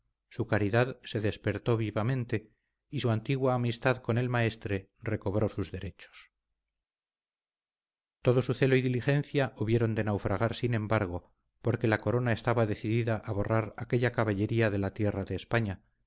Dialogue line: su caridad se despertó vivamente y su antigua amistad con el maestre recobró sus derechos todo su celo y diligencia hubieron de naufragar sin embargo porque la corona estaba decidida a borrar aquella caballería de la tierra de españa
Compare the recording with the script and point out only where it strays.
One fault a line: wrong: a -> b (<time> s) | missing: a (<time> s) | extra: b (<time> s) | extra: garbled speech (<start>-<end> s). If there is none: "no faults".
no faults